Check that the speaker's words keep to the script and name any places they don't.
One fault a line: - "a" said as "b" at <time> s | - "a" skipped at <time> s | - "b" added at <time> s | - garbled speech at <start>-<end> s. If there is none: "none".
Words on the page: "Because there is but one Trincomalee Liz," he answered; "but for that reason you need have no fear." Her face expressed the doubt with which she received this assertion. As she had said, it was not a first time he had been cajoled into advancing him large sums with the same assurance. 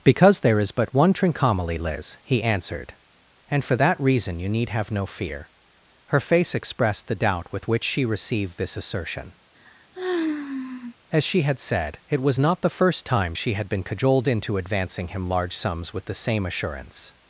- "but" said as "and" at 3.5 s
- "a" said as "the" at 12.6 s
- "he" said as "she" at 13.3 s